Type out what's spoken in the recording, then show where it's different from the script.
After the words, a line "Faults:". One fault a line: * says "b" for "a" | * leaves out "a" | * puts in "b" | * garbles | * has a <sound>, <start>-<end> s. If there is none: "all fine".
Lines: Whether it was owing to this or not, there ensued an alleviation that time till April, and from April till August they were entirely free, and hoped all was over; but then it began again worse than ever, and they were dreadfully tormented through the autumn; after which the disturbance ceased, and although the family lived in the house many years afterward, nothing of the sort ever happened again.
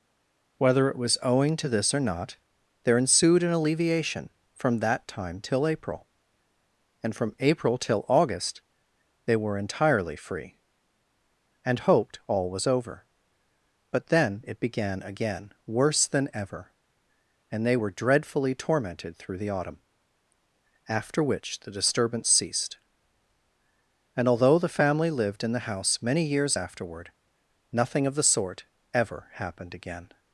Whether it was owing to this or not, there ensued an alleviation from that time till April, and from April till August they were entirely free, and hoped all was over; but then it began again worse than ever, and they were dreadfully tormented through the autumn; after which the disturbance ceased, and although the family lived in the house many years afterward, nothing of the sort ever happened again.
Faults:
* puts in "from"